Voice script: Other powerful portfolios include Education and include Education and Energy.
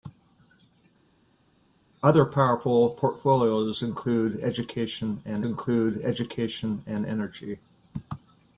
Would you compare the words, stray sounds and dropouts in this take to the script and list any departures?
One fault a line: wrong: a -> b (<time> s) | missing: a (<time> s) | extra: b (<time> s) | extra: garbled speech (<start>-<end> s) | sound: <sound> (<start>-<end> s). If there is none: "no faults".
no faults